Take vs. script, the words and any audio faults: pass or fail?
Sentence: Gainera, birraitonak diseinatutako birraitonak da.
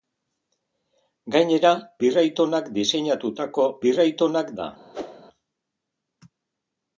fail